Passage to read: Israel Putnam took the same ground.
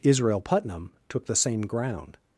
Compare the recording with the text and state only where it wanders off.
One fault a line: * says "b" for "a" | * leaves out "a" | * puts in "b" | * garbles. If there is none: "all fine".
all fine